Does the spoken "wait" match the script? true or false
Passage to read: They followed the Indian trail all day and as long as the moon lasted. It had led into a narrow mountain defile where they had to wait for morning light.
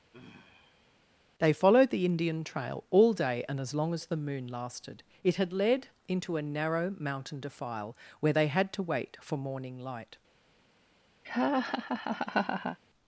true